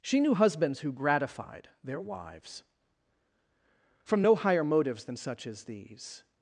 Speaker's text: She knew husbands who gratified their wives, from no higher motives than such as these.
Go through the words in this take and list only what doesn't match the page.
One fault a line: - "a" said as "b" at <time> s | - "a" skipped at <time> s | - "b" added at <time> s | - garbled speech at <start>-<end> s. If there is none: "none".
none